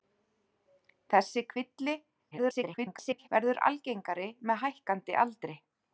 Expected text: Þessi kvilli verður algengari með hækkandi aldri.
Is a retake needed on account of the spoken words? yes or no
yes